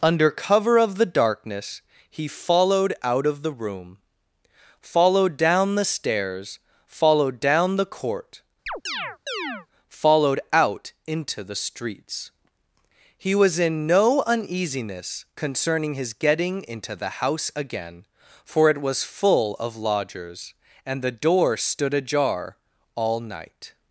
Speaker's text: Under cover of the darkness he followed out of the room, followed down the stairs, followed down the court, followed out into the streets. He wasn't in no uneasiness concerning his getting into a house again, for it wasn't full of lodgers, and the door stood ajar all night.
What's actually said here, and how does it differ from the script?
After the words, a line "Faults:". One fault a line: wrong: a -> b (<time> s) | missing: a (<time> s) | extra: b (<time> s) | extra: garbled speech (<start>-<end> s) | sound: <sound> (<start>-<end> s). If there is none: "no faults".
Under cover of the darkness he followed out of the room, followed down the stairs, followed down the court, followed out into the streets. He was in no uneasiness concerning his getting into the house again, for it was full of lodgers, and the door stood ajar all night.
Faults:
sound: chirp (8.7-9.7 s)
wrong: wasn't -> was (13.3 s)
wrong: a -> the (16.9 s)
wrong: wasn't -> was (18.8 s)